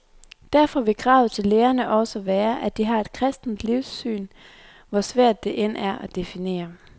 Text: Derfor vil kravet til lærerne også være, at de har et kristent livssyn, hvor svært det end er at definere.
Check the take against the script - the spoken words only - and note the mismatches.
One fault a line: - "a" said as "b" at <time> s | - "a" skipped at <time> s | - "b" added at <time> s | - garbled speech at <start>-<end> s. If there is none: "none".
none